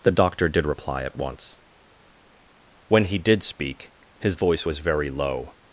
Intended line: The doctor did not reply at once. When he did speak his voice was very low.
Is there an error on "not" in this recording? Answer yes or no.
yes